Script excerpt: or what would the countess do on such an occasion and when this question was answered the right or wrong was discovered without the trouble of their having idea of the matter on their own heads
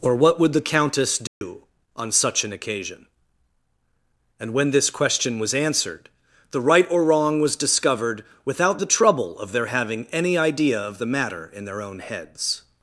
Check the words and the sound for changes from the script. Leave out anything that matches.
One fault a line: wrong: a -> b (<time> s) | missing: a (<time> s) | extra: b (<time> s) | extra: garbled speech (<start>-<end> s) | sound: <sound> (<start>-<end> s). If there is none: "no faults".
sound: dropout (1.3-1.4 s)
extra: any (10.1 s)
wrong: on -> in (11.5 s)